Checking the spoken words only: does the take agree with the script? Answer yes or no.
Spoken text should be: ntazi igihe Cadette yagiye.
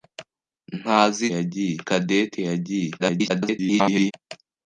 no